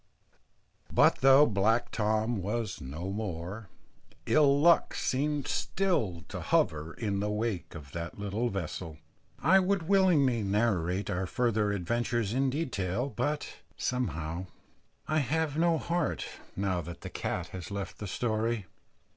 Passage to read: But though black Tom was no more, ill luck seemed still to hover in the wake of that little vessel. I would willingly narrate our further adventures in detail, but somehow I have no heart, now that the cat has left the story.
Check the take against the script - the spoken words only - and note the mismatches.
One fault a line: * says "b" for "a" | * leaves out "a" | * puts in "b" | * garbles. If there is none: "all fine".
all fine